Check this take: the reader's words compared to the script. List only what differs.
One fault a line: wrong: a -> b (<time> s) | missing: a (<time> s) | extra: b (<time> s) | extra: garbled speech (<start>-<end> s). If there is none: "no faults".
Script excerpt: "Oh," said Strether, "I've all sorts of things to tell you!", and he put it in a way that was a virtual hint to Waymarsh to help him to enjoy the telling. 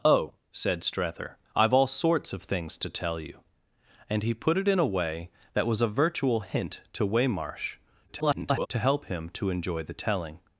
extra: garbled speech (8.1-8.7 s)